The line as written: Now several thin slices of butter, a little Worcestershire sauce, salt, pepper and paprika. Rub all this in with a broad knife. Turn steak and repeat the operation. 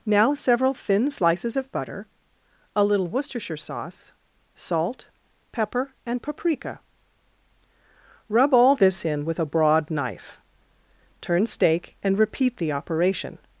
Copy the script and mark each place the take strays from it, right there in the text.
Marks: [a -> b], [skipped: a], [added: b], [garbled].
Now several thin slices of butter, a little Worcestershire sauce, salt, pepper and paprika. Rub all this in with a broad knife. Turn steak and repeat the operation.